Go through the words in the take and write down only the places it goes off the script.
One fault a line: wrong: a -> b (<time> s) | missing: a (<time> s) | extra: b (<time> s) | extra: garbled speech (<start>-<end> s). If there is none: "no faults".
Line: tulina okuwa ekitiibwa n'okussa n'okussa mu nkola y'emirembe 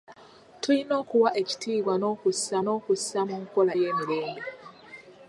no faults